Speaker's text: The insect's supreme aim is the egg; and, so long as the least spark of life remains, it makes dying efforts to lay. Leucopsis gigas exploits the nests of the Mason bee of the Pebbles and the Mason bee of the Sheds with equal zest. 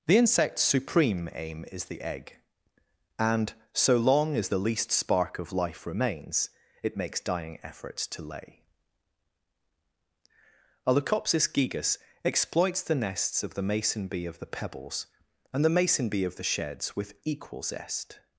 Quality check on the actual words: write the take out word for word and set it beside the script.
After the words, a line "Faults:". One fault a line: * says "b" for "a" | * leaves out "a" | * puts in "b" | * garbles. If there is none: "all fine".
The insect's supreme aim is the egg; and, so long as the least spark of life remains, it makes dying efforts to lay. a Leucopsis gigas exploits the nests of the Mason bee of the Pebbles and the Mason bee of the Sheds with equal zest.
Faults:
* puts in "a"